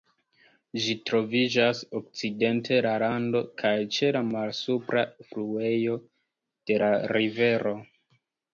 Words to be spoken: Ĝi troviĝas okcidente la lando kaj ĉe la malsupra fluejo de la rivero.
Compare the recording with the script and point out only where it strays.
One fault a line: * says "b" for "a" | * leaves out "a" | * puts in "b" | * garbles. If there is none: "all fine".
all fine